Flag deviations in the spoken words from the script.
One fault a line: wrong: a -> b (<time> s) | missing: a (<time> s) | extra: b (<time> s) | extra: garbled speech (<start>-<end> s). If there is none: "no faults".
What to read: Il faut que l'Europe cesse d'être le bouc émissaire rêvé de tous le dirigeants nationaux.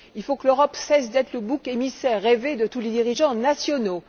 wrong: le -> les (2.8 s)